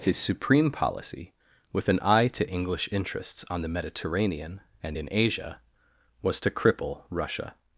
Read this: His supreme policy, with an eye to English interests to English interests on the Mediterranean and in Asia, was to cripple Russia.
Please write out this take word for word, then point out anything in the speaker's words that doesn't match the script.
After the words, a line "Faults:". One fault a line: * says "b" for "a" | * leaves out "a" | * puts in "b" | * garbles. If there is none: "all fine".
His supreme policy, with an eye to English interests on the Mediterranean and in Asia, was to cripple Russia.
Faults:
* leaves out "to English interests"